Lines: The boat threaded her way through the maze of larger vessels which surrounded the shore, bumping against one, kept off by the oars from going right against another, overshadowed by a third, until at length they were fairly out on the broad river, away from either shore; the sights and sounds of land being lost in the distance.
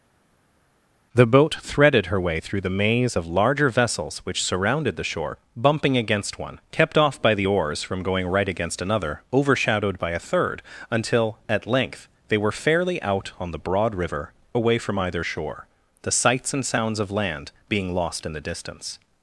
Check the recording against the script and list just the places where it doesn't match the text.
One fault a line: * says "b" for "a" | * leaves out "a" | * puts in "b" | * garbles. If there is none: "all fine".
all fine